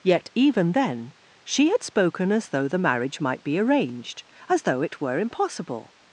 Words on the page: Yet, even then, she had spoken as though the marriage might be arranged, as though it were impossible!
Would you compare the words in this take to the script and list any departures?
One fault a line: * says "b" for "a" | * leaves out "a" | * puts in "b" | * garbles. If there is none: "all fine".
all fine